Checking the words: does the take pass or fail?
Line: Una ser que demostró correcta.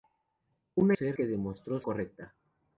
pass